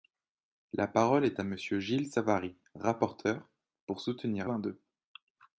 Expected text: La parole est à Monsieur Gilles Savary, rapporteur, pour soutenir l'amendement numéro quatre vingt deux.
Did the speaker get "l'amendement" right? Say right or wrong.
wrong